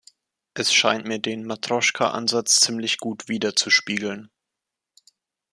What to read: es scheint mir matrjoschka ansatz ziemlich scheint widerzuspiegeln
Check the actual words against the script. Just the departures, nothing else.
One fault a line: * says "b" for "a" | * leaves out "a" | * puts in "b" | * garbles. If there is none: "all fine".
* puts in "den"
* says "gut" for "scheint"